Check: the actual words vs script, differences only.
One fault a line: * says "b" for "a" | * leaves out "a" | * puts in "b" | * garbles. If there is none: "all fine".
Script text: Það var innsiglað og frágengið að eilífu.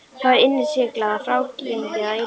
all fine